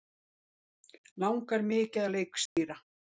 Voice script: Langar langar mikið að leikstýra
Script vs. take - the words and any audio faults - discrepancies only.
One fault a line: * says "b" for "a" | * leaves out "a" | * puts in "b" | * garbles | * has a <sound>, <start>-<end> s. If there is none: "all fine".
* leaves out "langar"
* has a dropout, 2.5-2.6 s